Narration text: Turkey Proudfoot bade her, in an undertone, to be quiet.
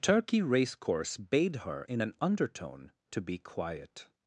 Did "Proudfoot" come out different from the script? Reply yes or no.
yes